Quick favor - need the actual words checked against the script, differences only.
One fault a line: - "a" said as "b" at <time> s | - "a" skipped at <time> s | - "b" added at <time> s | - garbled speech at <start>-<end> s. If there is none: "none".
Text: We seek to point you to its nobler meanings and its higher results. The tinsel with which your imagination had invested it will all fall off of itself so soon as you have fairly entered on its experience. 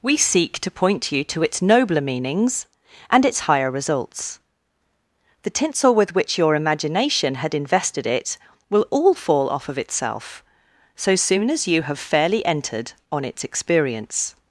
none